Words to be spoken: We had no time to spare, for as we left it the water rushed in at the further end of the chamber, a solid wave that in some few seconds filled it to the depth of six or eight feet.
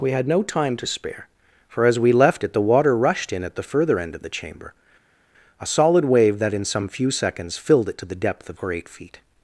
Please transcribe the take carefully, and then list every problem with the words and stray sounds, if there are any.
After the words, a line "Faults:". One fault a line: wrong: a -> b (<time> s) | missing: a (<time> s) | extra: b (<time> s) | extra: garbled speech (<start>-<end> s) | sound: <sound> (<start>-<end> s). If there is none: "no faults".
We had no time to spare, for as we left it the water rushed in at the further end of the chamber, a solid wave that in some few seconds filled it to the depth of or eight feet.
Faults:
missing: six (8.6 s)